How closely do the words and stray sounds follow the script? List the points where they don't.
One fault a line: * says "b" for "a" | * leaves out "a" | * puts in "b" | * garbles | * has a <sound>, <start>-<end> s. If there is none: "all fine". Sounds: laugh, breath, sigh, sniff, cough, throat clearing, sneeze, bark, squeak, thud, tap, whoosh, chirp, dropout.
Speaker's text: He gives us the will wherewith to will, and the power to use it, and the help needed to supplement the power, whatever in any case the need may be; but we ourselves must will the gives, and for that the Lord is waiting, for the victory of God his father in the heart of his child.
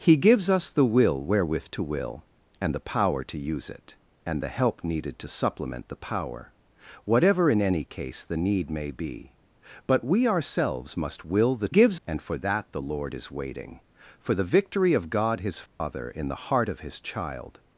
* has a dropout, 15.7-15.8 s